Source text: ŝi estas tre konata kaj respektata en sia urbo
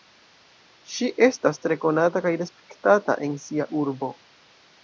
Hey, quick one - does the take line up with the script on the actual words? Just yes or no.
yes